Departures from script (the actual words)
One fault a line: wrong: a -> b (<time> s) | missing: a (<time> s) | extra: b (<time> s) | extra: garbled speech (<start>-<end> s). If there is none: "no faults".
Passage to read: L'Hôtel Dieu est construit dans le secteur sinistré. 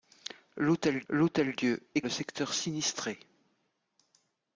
extra: l'hôtel (1.1 s)
missing: construit dans (2.0 s)